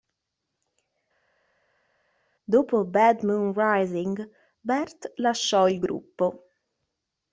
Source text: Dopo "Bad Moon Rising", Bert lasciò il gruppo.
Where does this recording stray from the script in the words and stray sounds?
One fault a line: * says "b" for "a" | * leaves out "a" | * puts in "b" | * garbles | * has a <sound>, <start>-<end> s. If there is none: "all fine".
all fine